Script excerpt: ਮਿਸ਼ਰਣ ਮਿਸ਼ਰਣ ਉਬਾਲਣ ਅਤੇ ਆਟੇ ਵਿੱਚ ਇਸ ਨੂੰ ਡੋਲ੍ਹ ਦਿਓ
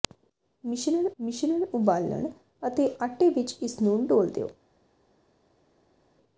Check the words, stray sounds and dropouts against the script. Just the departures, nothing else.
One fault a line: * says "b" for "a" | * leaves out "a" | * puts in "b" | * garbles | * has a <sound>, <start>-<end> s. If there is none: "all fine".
all fine